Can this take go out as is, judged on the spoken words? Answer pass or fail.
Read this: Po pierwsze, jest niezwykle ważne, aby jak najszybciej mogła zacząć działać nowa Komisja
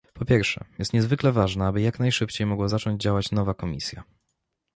pass